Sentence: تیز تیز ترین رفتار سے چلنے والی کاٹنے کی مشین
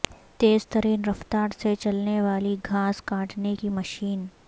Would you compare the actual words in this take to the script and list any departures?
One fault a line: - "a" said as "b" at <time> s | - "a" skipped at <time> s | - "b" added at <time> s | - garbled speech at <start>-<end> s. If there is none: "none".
- "تیز" skipped at 0.7 s
- "گھاس" added at 2.6 s